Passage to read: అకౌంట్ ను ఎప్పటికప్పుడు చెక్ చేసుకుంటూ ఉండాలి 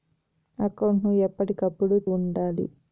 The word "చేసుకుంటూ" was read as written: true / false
false